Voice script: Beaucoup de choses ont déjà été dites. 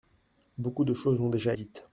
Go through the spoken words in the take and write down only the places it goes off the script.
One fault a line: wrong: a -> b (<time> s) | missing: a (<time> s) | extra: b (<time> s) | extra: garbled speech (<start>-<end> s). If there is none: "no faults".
missing: été (1.5 s)